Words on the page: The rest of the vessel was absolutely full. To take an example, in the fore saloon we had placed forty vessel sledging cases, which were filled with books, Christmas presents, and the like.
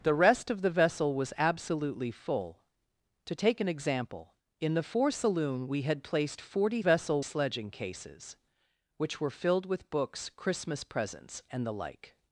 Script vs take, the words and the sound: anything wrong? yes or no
no